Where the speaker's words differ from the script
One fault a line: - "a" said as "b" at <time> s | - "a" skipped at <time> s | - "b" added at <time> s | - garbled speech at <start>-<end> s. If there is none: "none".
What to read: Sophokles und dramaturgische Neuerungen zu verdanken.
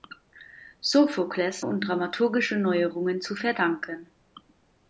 none